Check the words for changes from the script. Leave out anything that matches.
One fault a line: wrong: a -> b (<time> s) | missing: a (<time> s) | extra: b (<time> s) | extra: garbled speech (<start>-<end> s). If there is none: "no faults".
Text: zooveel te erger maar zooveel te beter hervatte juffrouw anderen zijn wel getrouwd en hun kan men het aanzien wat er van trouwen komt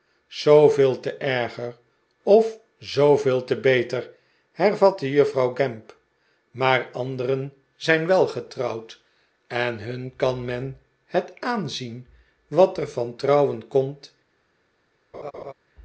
wrong: maar -> of (2.2 s)
extra: gamp maar (5.5 s)